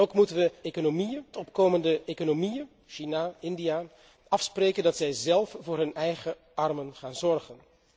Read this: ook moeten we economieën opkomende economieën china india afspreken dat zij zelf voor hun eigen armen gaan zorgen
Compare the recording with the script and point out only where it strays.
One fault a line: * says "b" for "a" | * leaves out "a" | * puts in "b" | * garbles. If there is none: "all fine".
all fine